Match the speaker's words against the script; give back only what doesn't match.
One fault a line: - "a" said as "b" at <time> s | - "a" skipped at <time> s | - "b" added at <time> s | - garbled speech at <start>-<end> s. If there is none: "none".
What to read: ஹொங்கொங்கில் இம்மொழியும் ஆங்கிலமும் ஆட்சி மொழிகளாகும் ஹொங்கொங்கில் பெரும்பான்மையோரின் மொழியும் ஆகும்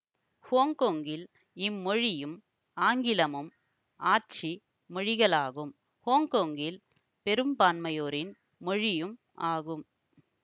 none